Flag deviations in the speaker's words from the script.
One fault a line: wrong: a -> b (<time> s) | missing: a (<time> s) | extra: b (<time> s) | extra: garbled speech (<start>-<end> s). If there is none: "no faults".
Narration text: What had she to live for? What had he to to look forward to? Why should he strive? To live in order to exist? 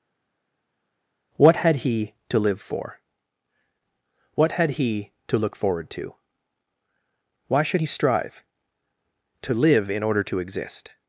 wrong: she -> he (1.8 s)
missing: to (5.4 s)